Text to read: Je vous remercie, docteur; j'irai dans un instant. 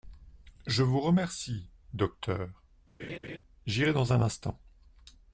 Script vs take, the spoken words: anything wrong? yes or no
no